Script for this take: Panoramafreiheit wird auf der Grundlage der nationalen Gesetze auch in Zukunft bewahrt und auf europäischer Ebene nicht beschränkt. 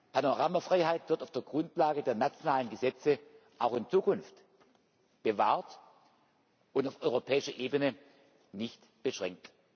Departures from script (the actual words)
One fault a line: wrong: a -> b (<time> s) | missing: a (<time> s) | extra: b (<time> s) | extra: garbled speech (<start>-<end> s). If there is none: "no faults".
no faults